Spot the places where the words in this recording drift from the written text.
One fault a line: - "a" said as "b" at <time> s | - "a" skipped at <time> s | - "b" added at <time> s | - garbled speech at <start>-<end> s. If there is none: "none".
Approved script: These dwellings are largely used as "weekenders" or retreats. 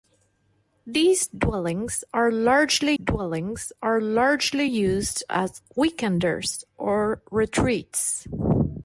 - "dwellings are largely" added at 2.9 s